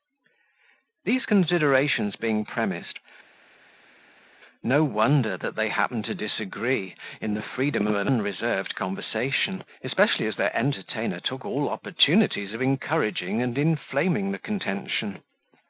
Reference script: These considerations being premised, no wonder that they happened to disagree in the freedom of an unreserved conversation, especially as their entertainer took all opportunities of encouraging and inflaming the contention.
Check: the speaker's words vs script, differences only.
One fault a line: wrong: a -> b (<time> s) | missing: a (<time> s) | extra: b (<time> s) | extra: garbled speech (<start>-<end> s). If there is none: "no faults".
no faults